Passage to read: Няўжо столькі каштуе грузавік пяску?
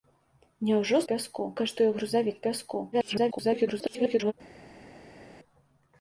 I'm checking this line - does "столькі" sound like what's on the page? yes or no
no